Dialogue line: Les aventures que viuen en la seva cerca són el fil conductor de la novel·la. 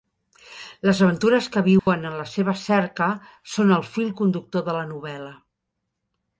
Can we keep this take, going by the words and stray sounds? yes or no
no